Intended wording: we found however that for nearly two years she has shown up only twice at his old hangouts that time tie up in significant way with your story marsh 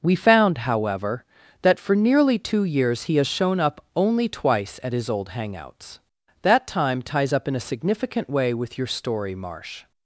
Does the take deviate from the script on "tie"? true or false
true